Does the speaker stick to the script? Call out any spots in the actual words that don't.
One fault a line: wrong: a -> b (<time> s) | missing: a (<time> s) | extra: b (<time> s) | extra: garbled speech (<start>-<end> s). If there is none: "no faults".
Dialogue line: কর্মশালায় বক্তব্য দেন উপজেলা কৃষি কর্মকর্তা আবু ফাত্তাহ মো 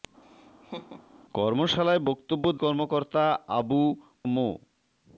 missing: দেন উপজেলা কৃষি (2.4 s)
missing: ফাত্তাহ (3.8 s)